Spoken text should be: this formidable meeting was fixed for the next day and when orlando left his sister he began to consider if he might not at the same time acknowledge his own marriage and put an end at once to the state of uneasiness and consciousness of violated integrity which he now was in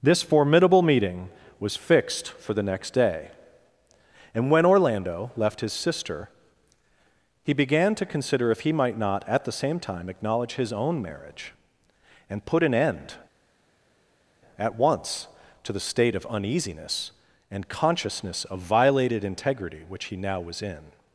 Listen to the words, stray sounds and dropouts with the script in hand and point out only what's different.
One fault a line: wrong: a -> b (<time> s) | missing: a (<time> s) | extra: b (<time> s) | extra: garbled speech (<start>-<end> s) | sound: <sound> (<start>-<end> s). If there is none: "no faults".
no faults